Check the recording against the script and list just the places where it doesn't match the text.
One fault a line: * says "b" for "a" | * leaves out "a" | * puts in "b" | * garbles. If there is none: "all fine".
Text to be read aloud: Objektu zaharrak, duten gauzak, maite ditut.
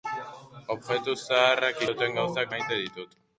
all fine